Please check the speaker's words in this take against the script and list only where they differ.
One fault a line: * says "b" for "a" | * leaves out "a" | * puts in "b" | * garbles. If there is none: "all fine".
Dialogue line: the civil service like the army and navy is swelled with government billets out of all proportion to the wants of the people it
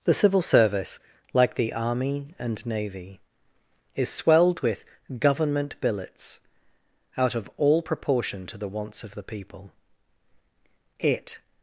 all fine